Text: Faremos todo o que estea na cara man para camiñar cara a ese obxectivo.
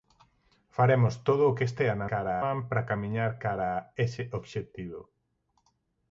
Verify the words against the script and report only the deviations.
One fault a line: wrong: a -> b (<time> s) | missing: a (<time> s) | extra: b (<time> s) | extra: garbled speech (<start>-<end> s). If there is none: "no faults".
no faults